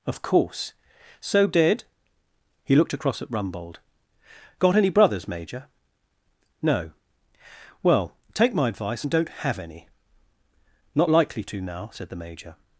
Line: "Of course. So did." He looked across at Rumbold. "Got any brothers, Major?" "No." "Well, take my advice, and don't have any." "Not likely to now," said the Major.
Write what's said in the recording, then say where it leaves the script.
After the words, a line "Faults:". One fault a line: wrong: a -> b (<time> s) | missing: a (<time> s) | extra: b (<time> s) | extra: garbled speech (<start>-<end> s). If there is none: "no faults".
"Of course. So did." He looked across at Rumbold. "Got any brothers, Major?" "No." "Well, take my advice, and don't have any." "Not likely to now," said the Major.
Faults:
no faults